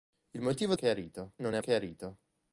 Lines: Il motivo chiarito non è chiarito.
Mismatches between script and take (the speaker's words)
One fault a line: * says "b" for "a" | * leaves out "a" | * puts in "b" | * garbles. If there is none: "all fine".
all fine